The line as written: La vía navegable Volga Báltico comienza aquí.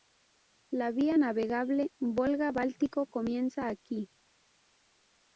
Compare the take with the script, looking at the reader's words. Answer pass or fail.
pass